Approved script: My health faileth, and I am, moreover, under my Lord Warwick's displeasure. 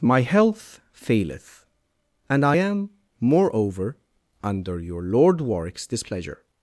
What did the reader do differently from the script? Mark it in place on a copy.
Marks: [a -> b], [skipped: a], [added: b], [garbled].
My health faileth, and I am, moreover, under [my -> your] Lord Warwick's displeasure.